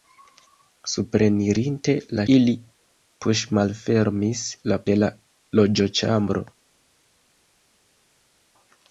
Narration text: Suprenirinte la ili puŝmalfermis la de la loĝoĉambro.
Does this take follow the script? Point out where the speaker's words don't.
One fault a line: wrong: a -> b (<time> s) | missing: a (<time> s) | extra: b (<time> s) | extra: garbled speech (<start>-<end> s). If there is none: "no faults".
no faults